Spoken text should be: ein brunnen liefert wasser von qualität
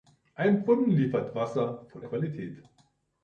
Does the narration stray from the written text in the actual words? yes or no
no